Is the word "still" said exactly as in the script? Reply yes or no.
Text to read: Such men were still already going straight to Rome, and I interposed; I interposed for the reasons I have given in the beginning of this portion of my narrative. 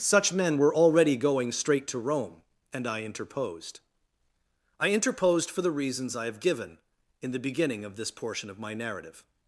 no